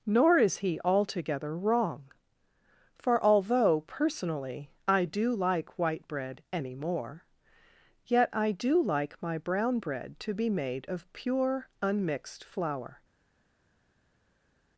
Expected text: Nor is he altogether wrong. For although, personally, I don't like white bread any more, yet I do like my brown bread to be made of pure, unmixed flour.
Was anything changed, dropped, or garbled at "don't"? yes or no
yes